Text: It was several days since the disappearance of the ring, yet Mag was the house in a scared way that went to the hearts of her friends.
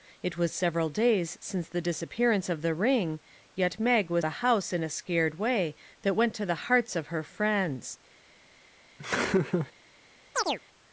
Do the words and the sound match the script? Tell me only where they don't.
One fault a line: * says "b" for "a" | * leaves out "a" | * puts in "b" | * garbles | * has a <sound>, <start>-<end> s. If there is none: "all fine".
* has a laugh, 9.0-9.7 s
* has a chirp, 10.3-10.6 s